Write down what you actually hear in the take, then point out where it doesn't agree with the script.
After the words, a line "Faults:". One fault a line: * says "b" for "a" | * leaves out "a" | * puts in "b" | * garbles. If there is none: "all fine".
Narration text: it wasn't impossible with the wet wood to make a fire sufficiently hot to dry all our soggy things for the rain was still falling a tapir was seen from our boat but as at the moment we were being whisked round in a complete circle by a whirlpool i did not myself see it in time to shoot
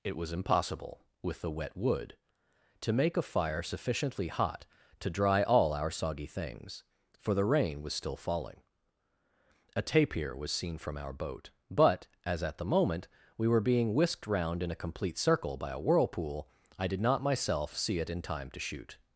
it was impossible with the wet wood to make a fire sufficiently hot to dry all our soggy things for the rain was still falling a tapir was seen from our boat but as at the moment we were being whisked round in a complete circle by a whirlpool i did not myself see it in time to shoot
Faults:
* says "was" for "wasn't"